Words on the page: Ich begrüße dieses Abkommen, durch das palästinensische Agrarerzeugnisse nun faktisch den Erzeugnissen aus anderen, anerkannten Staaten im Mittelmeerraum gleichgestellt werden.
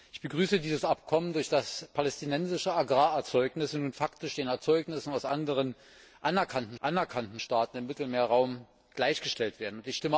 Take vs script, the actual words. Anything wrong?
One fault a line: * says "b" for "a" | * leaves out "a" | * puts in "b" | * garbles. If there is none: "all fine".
* puts in "anerkannten"